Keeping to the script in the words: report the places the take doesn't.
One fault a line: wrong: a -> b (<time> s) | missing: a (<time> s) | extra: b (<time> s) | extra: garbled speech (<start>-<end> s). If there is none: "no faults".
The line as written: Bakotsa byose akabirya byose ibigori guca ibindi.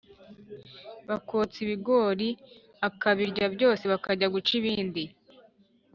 wrong: byose -> ibigori (1.6 s)
wrong: ibigori -> bakajya (3.9 s)